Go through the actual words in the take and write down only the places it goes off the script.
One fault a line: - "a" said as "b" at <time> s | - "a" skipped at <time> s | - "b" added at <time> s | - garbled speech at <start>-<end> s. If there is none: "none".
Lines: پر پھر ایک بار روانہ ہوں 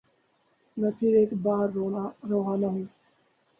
- "پر" said as "میں" at 0.8 s